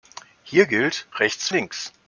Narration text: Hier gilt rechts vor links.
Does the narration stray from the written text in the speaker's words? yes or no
yes